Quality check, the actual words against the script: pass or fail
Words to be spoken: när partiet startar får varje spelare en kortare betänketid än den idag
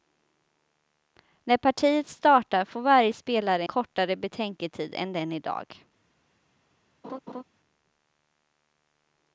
fail